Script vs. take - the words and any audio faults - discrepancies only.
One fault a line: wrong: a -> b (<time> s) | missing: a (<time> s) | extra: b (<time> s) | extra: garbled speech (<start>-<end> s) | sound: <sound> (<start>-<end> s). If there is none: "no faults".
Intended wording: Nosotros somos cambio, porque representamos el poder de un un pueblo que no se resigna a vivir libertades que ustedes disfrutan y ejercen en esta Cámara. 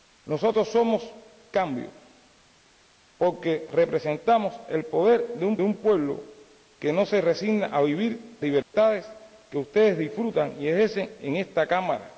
sound: dropout (8.6-8.7 s)